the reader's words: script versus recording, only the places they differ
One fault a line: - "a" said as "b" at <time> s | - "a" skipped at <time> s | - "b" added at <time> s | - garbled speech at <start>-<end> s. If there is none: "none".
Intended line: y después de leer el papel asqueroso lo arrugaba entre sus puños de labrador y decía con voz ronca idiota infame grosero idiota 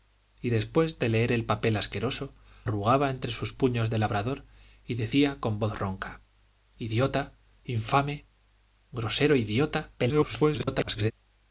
- "lo" skipped at 2.3 s
- garbled speech at 10.0-11.1 s